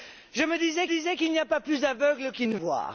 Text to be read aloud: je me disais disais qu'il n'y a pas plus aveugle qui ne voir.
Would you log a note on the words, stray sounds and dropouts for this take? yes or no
no